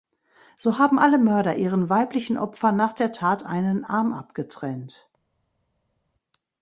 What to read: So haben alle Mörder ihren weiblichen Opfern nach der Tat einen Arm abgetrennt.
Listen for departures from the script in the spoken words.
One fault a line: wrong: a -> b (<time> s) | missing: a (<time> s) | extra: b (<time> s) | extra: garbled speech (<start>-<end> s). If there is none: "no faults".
no faults